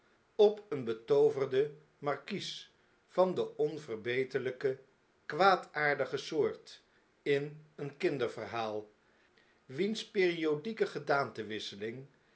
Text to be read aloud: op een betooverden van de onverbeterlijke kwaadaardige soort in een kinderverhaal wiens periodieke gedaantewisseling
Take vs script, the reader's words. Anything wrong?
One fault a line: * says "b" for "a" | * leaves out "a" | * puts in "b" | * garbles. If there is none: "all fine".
* puts in "markies"